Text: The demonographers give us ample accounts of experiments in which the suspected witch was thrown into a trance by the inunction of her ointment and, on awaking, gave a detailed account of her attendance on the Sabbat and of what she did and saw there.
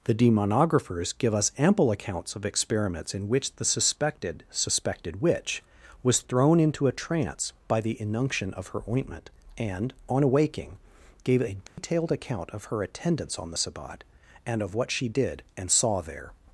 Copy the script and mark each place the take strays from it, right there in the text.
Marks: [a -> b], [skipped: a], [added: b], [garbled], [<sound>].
The demonographers give us ample accounts of experiments in which the suspected [added: suspected] witch was thrown into a trance by the inunction of her ointment and, on awaking, gave a detailed [dropout] account of her attendance on the Sabbat and of what she did and saw there.